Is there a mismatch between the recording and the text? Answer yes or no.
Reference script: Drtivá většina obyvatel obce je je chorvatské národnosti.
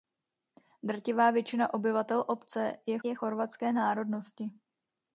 no